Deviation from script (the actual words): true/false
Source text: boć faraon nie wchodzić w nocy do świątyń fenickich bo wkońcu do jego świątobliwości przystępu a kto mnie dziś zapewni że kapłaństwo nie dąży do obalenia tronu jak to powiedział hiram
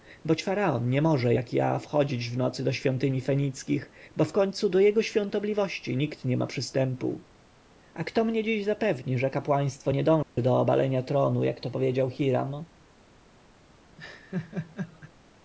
true